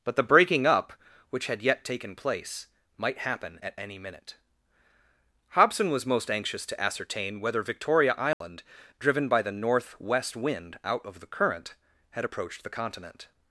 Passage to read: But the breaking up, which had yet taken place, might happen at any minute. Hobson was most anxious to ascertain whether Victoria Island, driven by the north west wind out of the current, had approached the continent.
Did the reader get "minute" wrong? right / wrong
right